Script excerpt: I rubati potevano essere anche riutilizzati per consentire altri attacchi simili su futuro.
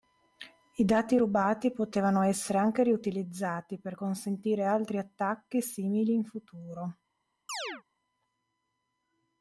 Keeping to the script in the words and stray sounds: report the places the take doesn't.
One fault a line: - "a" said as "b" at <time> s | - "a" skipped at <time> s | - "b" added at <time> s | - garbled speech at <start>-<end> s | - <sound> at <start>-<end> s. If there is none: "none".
- "dati" added at 0.8 s
- "su" said as "in" at 6.1 s
- chirp at 7.5-7.8 s